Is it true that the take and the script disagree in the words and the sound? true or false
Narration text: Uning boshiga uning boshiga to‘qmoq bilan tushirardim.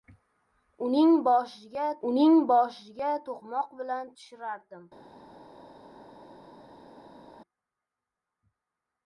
false